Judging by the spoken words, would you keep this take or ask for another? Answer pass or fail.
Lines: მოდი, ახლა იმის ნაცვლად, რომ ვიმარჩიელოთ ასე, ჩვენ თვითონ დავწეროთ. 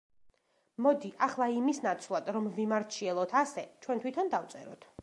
pass